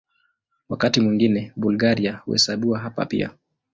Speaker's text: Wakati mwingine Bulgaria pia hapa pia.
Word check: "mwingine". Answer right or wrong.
right